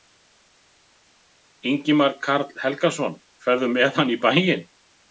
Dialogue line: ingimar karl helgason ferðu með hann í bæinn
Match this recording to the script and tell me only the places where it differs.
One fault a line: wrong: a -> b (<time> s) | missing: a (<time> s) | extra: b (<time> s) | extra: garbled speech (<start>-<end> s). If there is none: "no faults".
no faults